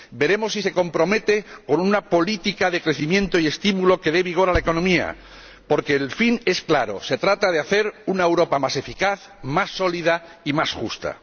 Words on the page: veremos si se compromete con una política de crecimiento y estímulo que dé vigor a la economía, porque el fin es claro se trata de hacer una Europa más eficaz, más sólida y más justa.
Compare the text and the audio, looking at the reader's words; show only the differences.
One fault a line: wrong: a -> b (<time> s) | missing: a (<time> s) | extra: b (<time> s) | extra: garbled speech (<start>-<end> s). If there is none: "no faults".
no faults